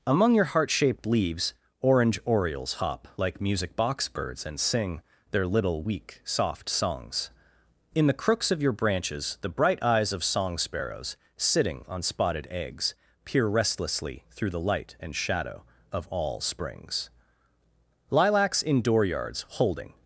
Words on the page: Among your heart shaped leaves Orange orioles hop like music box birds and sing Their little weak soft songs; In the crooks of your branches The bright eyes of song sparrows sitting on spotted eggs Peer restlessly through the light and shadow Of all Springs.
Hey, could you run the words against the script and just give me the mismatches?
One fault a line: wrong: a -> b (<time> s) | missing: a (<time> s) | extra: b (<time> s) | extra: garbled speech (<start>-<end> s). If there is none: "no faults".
extra: Lilacs in dooryards Holding (18.1 s)